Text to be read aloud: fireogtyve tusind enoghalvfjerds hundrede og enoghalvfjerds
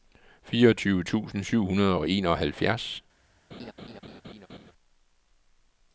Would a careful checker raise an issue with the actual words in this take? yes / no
yes